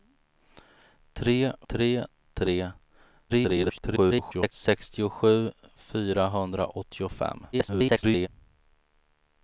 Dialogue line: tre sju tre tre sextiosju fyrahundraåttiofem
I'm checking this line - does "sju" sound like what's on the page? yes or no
no